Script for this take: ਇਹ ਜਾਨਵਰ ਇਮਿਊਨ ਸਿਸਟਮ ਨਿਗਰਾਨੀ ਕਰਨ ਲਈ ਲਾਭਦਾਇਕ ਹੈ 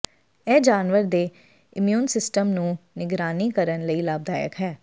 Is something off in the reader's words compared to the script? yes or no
yes